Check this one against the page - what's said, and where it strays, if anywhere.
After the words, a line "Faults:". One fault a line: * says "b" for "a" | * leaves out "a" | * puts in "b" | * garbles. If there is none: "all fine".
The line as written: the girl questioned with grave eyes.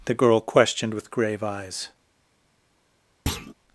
the girl questioned with grave eyes.
Faults:
all fine